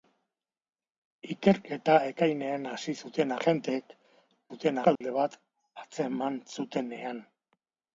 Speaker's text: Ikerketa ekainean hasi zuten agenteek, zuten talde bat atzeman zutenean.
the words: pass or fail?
pass